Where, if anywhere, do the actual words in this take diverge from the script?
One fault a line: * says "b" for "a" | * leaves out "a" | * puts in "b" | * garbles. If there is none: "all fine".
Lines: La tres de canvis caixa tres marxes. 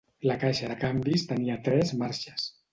* says "caixa" for "tres"
* says "tenia" for "caixa"